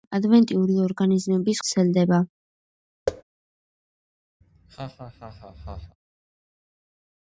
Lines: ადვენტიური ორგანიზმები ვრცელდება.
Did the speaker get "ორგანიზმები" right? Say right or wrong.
right